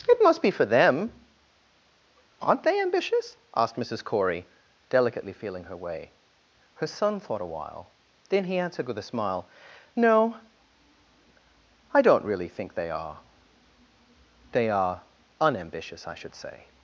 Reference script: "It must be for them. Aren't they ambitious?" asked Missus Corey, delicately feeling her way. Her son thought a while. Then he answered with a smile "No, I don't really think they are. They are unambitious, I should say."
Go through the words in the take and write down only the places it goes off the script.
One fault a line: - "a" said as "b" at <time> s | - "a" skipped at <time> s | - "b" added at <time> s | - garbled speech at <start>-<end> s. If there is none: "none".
none